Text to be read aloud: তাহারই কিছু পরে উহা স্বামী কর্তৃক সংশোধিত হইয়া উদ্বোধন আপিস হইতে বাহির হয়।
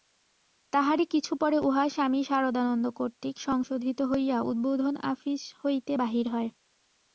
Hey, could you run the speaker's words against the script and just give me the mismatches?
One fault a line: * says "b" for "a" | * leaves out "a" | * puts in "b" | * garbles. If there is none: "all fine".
* puts in "সারদানন্দ"